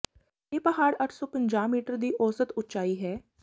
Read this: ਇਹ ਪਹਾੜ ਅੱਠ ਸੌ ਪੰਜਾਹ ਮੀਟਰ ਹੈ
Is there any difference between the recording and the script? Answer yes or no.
yes